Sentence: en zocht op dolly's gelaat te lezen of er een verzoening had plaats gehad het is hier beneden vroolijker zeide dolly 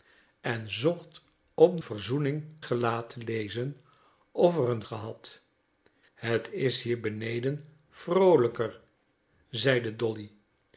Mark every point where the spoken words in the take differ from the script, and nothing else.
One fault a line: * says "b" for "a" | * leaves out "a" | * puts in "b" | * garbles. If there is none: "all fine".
* says "verzoening" for "dolly's"
* leaves out "verzoening had plaats"